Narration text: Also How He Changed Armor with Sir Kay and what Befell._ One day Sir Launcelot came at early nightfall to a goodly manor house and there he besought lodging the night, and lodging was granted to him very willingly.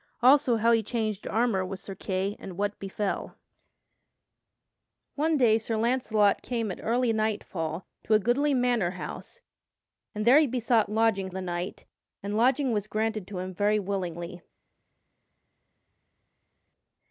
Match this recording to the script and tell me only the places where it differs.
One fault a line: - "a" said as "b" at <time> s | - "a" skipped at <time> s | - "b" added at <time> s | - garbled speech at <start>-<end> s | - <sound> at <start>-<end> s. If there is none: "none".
none